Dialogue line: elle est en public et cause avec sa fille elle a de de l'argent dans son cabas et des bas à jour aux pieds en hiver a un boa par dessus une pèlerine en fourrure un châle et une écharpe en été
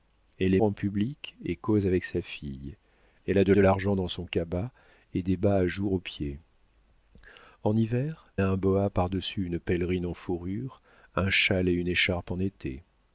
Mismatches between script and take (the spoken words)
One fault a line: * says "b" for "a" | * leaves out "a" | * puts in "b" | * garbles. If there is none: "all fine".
all fine